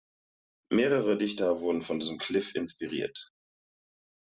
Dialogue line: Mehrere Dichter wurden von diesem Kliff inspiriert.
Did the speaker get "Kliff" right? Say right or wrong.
right